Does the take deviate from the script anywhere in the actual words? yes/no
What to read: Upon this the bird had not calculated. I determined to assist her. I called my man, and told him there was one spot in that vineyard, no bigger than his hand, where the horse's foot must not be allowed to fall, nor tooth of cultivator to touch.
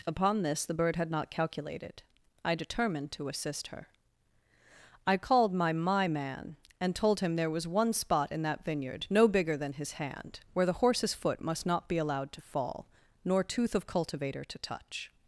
yes